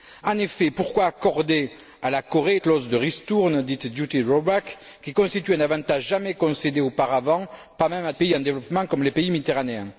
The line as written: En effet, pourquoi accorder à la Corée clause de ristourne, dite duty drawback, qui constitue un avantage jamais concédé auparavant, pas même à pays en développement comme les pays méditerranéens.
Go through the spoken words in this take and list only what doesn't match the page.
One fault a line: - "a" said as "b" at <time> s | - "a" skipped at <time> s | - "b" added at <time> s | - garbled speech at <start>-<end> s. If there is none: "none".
none